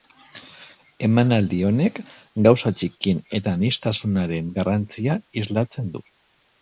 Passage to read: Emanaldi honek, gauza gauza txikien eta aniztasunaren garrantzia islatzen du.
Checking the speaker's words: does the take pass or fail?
fail